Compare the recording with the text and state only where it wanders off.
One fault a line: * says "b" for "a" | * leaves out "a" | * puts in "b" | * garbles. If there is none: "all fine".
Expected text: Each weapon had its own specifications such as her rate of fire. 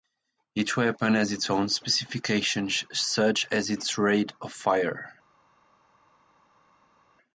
* says "has" for "had"
* says "its" for "her"